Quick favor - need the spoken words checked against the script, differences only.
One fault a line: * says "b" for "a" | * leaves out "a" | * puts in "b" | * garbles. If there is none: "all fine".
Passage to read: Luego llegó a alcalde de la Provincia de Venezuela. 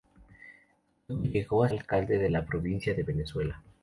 all fine